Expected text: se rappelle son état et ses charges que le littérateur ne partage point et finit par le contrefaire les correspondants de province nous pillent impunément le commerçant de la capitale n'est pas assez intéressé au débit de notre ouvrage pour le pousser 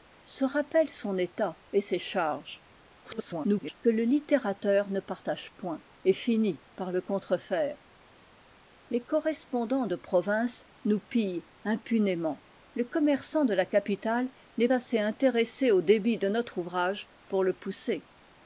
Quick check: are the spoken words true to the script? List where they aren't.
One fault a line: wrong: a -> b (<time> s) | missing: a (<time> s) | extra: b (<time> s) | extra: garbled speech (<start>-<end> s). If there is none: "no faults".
extra: garbled speech (3.0-3.8 s)
missing: pas (14.7 s)